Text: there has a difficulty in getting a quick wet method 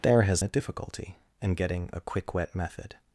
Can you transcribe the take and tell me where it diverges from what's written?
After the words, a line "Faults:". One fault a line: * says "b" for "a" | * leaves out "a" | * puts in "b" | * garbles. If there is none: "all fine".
there has a difficulty in getting a quick wet method
Faults:
all fine